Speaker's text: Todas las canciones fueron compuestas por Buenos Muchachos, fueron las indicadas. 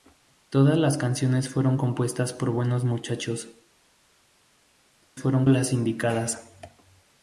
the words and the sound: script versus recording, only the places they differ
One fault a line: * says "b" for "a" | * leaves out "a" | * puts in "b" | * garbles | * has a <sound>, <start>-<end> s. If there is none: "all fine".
all fine